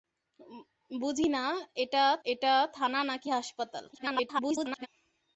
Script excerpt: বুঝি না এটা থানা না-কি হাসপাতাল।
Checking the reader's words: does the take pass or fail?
fail